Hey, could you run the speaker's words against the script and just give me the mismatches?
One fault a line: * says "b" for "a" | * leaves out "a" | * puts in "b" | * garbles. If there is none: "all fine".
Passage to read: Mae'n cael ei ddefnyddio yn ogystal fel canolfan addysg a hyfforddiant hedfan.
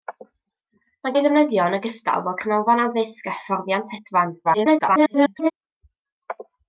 * leaves out "cael"
* garbles